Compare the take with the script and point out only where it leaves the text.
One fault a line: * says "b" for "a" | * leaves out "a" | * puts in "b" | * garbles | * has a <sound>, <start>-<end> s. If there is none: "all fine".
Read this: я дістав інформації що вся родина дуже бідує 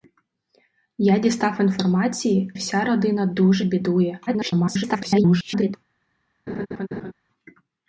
* leaves out "що"
* garbles
* has a laugh, 6.5-7.1 s